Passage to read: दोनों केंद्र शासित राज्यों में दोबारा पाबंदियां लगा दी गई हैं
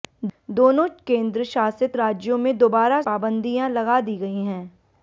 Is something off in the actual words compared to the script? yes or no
no